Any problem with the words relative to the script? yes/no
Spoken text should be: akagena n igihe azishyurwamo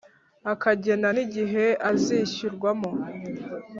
no